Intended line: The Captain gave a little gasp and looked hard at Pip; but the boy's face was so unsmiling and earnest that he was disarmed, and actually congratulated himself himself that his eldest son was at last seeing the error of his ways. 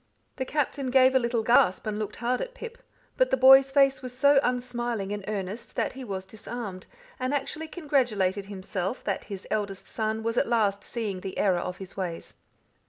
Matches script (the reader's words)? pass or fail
fail